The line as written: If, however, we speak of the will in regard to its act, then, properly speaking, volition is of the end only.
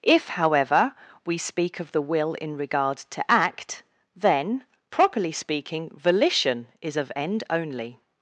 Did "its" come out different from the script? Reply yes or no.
yes